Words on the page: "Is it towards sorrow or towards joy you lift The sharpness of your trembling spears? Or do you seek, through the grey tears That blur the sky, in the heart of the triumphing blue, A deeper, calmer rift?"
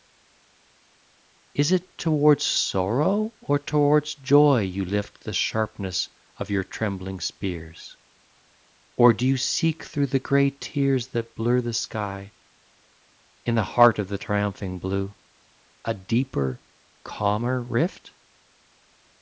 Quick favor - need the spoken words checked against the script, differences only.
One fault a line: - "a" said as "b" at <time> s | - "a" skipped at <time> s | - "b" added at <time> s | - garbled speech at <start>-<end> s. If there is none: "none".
none